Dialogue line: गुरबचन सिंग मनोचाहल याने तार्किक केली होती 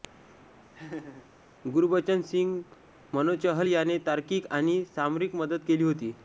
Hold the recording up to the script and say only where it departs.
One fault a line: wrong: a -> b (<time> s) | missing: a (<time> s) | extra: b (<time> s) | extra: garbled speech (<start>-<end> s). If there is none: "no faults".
extra: आणि सामरिक मदत (4.5 s)